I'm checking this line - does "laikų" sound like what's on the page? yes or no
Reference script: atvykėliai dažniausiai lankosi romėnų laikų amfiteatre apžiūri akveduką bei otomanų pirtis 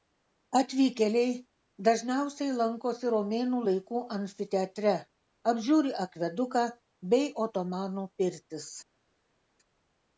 yes